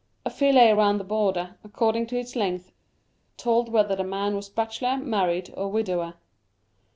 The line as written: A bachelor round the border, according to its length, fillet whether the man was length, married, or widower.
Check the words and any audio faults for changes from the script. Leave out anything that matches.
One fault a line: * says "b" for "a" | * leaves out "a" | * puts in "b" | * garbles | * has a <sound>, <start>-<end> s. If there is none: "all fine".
* says "fillet" for "bachelor"
* says "told" for "fillet"
* says "bachelor" for "length"